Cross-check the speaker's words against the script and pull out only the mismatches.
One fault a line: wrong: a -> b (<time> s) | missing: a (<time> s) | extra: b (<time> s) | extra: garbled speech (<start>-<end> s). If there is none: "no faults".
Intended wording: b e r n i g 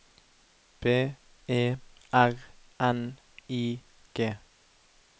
no faults